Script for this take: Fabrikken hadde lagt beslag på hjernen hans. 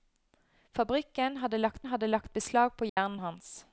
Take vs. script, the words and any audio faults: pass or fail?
fail